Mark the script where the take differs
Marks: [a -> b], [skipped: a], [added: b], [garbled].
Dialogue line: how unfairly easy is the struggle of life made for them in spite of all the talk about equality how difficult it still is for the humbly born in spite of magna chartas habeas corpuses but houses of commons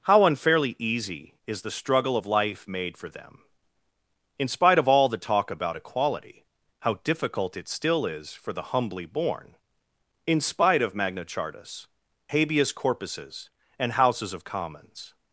how unfairly easy is the struggle of life made for them in spite of all the talk about equality how difficult it still is for the humbly born in spite of magna chartas habeas corpuses [but -> and] houses of commons